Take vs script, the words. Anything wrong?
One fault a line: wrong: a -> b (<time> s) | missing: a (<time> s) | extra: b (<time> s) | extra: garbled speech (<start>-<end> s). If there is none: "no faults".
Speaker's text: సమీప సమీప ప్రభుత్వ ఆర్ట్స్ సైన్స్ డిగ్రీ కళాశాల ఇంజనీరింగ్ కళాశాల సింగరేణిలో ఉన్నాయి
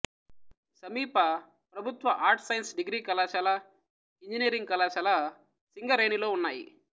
missing: సమీప (1.2 s)